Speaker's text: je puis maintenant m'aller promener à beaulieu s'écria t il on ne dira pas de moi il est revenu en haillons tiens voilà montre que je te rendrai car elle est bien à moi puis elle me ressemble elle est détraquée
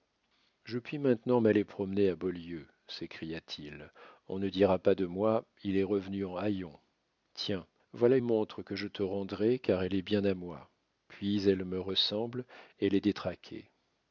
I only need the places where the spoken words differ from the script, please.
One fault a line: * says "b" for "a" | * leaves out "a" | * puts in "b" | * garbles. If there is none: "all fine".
all fine